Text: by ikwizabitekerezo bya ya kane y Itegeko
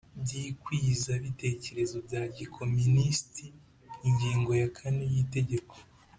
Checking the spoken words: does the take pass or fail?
fail